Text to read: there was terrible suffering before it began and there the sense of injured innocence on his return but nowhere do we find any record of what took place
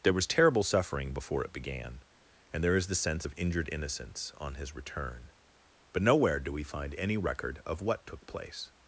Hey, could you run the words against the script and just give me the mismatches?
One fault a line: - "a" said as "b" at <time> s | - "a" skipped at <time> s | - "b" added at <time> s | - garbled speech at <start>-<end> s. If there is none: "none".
- "is" added at 2.8 s